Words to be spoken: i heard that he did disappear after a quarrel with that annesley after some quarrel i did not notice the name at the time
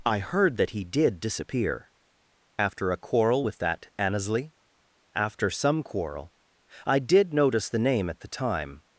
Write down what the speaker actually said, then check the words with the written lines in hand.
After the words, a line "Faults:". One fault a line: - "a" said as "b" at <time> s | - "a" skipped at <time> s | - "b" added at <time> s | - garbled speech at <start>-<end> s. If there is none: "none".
i heard that he did disappear after a quarrel with that annesley after some quarrel i did notice the name at the time
Faults:
- "not" skipped at 7.3 s